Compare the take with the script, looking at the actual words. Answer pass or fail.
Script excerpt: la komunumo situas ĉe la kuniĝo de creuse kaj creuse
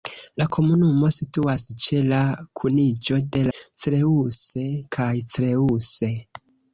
pass